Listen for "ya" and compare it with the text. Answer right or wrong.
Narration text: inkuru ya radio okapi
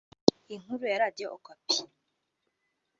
right